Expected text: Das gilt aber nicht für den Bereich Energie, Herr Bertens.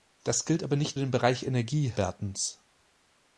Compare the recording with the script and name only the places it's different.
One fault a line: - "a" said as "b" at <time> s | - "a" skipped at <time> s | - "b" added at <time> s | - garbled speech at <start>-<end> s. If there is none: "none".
- "für" skipped at 1.0 s
- "Herr" skipped at 1.9 s